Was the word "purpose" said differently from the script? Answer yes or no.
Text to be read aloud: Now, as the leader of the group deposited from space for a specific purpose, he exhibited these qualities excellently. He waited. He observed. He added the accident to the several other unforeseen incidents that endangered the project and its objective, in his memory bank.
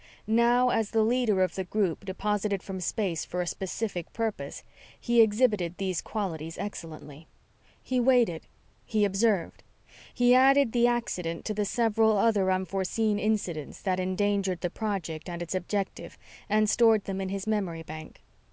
no